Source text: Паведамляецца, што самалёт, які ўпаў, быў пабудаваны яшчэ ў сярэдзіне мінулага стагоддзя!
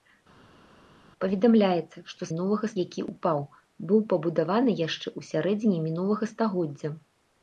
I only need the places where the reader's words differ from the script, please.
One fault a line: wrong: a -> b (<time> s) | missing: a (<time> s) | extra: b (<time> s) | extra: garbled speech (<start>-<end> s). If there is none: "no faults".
wrong: самалёт -> мінулага (2.3 s)